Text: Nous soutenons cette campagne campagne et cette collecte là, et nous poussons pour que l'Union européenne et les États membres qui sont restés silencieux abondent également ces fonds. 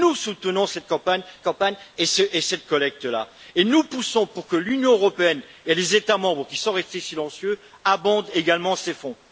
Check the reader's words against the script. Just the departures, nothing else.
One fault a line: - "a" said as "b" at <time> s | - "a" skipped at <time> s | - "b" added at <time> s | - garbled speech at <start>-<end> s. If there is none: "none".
none